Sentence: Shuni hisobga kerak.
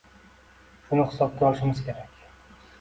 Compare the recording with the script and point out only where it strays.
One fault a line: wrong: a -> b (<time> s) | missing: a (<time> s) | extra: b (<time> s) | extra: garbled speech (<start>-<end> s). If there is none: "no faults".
extra: olishimiz (1.5 s)